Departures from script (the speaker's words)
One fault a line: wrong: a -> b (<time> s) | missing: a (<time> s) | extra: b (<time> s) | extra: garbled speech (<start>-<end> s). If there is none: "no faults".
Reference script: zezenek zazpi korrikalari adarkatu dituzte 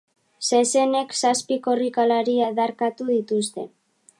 no faults